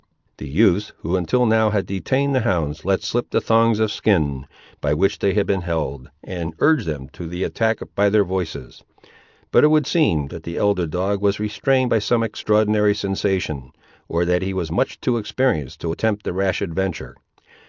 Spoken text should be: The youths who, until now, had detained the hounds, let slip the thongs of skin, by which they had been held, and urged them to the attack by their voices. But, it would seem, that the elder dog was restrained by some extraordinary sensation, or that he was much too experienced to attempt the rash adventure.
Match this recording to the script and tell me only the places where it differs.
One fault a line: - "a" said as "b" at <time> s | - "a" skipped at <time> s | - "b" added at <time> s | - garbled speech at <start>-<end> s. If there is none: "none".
none